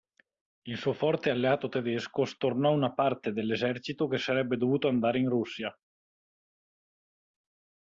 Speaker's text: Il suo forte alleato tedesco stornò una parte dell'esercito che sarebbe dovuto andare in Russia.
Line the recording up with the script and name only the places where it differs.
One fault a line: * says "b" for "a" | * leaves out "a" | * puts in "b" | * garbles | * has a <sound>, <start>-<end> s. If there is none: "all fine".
all fine